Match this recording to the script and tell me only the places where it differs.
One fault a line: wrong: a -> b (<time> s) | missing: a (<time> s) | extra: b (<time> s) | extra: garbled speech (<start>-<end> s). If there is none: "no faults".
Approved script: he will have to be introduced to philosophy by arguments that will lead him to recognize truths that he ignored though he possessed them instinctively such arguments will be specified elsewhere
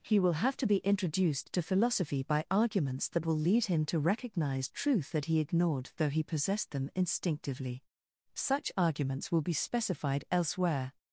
wrong: truths -> truth (4.7 s)